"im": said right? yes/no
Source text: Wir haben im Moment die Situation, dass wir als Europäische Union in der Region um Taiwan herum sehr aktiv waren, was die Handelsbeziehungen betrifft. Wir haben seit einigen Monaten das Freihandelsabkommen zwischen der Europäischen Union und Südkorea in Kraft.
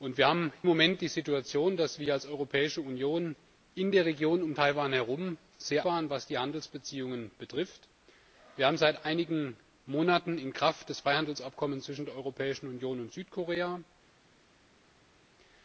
no